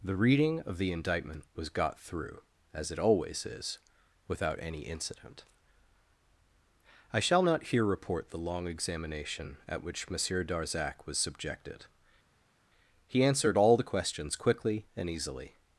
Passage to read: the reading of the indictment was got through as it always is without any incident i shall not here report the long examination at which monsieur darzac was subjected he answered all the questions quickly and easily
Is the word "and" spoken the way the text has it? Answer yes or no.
yes